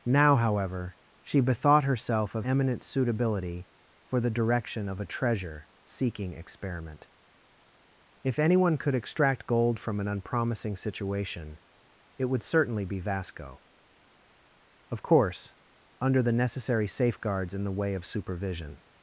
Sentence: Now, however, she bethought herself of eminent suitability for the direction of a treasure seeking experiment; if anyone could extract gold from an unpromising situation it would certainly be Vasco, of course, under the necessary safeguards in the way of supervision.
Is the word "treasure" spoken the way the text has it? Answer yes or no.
yes